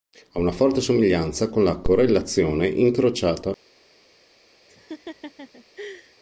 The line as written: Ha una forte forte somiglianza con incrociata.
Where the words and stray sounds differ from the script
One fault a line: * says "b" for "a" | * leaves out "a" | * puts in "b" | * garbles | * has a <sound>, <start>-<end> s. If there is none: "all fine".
* leaves out "forte"
* puts in "la correlazione"
* has a laugh, 4.7-6.2 s